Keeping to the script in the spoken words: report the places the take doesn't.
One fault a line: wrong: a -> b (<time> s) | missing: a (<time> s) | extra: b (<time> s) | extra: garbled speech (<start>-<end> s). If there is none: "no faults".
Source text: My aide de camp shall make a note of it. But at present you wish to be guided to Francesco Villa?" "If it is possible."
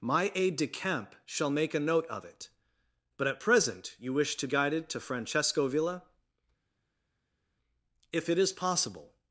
missing: be (4.5 s)